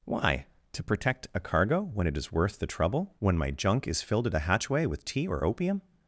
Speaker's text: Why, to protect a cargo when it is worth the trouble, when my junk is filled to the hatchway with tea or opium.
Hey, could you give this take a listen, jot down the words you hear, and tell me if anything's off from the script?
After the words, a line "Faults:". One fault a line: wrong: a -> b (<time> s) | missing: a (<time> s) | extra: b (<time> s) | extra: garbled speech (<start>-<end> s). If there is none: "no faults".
Why, to protect a cargo when it is worth the trouble, when my junk is filled at a hatchway with tea or opium.
Faults:
wrong: to the -> at a (4.3 s)